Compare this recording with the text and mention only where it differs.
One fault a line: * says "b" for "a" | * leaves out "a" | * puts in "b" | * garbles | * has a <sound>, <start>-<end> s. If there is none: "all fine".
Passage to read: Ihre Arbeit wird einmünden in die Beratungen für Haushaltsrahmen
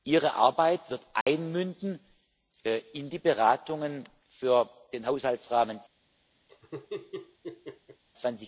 * has a dropout, 1.2-1.3 s
* puts in "den"
* has a laugh, 6.5-8.0 s